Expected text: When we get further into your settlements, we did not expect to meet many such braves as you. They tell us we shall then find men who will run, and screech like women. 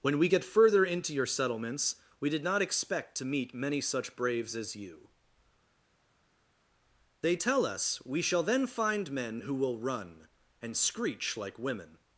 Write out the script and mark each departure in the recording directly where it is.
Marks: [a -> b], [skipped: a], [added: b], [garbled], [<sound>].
When we get further into your settlements, we did not expect to meet many such braves as you. They tell us we shall then find men who will run, and screech like women.